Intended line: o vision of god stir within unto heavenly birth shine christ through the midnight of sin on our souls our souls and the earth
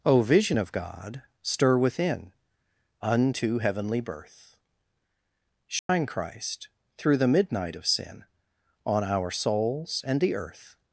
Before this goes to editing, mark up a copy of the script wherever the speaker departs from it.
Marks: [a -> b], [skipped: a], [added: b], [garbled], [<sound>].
o vision of god stir within unto heavenly birth shine [dropout] christ through the midnight of sin on our souls [skipped: our souls] and the earth